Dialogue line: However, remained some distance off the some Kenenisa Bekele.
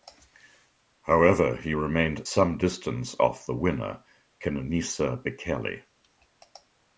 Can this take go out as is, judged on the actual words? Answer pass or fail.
fail